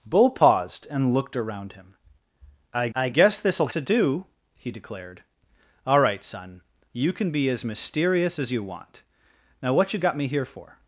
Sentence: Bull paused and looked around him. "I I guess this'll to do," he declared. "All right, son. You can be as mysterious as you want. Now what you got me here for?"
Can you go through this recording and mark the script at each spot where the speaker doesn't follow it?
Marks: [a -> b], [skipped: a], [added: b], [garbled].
Bull paused and looked around him. "I I guess this'll to do," he declared. "All right, son. You can be as mysterious as you want. Now what you got me here for?"